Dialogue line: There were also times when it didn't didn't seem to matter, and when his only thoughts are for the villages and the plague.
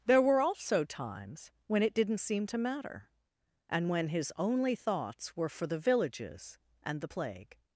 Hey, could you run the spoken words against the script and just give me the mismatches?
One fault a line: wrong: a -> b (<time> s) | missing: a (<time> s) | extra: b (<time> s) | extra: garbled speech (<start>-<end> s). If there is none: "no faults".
missing: didn't (2.2 s)
wrong: are -> were (5.4 s)